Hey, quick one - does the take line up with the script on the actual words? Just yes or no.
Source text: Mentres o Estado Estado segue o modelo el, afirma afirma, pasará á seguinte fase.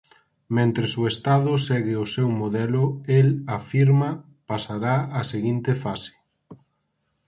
no